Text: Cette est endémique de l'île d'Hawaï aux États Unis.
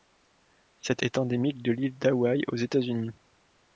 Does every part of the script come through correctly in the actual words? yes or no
yes